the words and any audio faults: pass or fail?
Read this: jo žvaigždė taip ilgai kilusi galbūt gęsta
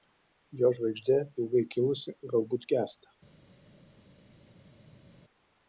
fail